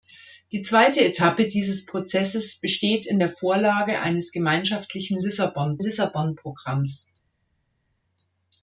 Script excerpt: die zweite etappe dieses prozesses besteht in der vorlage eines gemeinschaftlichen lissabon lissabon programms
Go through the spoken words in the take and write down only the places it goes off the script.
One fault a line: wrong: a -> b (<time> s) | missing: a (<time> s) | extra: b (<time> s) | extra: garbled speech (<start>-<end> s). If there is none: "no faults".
no faults